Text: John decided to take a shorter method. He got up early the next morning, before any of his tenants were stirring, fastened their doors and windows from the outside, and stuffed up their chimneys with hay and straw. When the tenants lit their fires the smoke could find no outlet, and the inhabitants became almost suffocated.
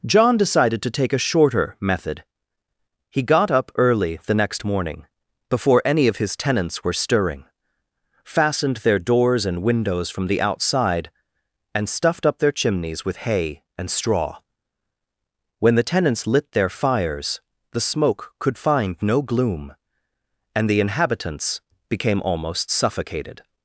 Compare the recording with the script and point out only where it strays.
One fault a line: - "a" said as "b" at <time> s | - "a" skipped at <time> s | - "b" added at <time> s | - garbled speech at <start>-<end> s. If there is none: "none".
- "outlet" said as "gloom" at 19.2 s